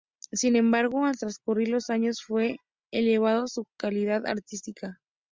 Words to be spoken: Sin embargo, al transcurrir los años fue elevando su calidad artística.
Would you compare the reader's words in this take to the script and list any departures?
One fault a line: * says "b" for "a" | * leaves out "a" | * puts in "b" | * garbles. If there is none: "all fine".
all fine